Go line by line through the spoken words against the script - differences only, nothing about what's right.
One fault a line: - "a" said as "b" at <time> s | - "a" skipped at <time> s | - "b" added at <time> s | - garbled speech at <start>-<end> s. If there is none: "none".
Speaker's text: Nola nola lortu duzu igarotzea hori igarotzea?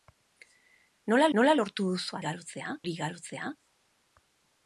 none